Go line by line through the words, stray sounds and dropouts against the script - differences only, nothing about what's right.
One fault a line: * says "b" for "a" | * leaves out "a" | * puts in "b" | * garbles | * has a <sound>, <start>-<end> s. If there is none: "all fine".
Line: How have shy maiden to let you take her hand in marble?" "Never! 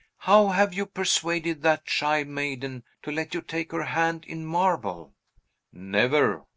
* puts in "you persuaded that"